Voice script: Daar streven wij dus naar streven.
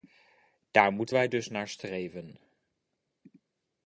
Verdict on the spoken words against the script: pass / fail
fail